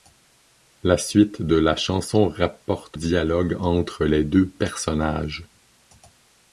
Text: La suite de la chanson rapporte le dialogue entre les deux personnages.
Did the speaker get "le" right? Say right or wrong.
wrong